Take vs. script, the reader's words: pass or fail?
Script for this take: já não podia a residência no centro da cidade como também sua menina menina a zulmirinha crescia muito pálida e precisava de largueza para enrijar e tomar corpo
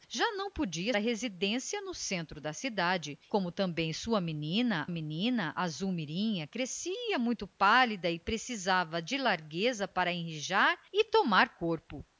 pass